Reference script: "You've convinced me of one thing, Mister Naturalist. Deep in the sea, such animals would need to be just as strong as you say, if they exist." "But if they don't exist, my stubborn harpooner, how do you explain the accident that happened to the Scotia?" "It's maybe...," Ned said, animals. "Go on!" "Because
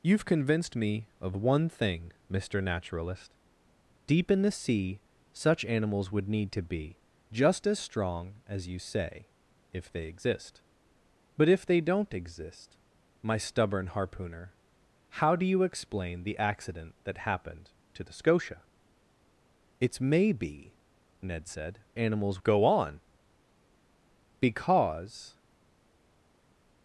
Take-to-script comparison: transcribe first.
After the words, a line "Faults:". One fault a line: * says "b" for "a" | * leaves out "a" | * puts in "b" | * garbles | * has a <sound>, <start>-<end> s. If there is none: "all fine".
"You've convinced me of one thing, Mister Naturalist. Deep in the sea, such animals would need to be just as strong as you say, if they exist." "But if they don't exist, my stubborn harpooner, how do you explain the accident that happened to the Scotia?" "It's maybe...," Ned said, animals. "Go on!" "Because
Faults:
all fine